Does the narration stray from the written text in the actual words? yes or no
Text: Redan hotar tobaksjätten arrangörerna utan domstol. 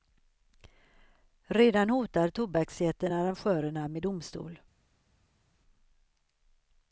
yes